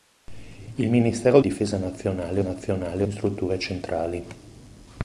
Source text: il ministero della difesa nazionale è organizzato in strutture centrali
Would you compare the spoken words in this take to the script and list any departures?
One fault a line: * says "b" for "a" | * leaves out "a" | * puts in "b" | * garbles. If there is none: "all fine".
* leaves out "della"
* says "nazionale" for "organizzato"